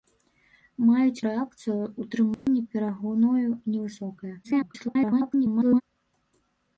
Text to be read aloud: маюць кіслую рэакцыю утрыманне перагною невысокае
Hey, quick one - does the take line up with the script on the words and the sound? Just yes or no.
no